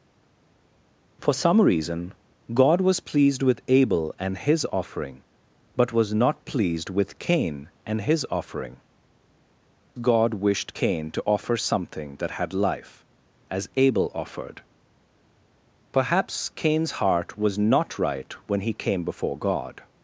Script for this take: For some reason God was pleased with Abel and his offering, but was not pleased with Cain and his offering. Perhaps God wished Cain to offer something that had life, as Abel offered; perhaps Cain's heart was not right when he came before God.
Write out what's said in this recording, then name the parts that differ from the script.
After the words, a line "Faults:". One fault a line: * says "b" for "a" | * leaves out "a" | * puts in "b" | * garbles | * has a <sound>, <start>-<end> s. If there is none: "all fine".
For some reason God was pleased with Abel and his offering, but was not pleased with Cain and his offering. God wished Cain to offer something that had life, as Abel offered; perhaps Cain's heart was not right when he came before God.
Faults:
* leaves out "Perhaps"